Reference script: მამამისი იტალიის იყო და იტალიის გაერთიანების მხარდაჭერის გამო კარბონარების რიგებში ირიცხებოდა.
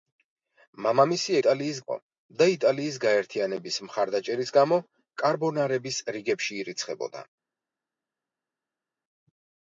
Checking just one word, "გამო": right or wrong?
right